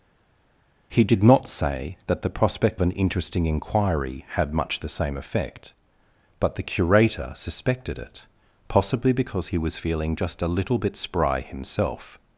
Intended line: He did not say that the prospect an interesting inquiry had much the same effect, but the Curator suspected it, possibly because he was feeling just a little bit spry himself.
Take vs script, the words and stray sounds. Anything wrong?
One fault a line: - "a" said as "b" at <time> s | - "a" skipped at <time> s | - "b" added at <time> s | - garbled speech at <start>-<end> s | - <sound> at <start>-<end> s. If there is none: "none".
none